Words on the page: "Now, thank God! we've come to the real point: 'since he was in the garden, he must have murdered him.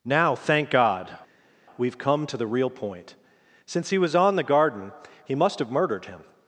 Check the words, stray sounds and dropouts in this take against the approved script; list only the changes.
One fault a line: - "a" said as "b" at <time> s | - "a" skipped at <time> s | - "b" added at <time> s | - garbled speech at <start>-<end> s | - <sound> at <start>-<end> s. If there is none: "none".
- "in" said as "on" at 4.1 s